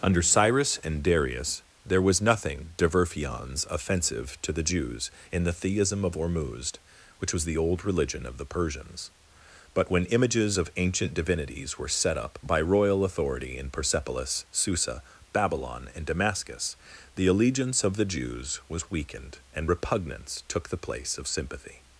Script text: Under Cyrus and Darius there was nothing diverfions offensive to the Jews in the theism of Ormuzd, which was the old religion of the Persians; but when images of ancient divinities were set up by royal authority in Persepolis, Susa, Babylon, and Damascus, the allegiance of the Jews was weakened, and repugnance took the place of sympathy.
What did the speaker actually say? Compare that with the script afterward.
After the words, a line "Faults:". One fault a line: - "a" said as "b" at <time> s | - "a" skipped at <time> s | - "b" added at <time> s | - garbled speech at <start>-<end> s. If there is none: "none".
Under Cyrus and Darius there was nothing diverfions offensive to the Jews in the theism of Ormuzd, which was the old religion of the Persians; but when images of ancient divinities were set up by royal authority in Persepolis, Susa, Babylon, and Damascus, the allegiance of the Jews was weakened, and repugnance took the place of sympathy.
Faults:
none